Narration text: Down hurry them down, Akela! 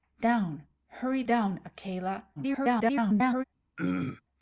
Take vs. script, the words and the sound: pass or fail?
fail